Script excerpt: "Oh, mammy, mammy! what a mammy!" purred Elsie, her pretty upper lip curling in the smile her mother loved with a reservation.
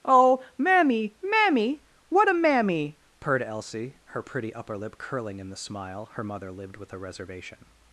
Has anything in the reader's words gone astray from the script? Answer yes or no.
yes